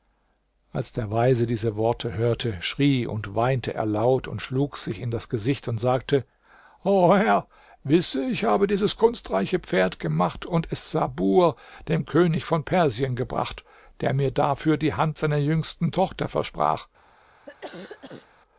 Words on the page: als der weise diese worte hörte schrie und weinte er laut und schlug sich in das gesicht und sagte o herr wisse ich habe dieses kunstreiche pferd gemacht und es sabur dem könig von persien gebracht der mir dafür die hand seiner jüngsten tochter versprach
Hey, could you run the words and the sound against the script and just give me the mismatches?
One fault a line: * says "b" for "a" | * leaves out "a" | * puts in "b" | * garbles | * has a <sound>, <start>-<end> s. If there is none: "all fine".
* has a cough, 17.5-18.3 s